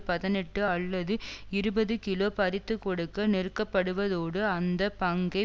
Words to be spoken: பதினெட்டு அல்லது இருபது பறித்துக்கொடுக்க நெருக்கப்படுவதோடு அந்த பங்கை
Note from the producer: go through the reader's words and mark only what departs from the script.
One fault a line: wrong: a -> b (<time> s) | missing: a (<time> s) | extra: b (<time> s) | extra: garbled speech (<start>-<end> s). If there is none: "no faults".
extra: கிலோ (2.0 s)